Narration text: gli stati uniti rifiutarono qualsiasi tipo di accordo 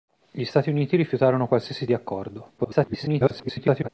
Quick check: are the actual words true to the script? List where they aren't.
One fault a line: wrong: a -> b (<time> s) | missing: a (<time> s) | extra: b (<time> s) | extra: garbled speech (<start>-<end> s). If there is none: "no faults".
missing: tipo (1.9 s)
extra: garbled speech (2.6-3.9 s)